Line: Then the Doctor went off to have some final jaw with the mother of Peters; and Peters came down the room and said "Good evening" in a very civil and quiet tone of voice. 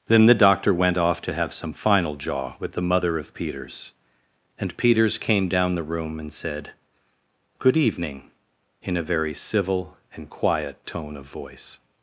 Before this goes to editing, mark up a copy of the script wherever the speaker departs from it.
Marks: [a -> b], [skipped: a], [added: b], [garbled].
Then the Doctor went off to have some final jaw with the mother of Peters; and Peters came down the room and said "Good evening" in a very civil and quiet tone of voice.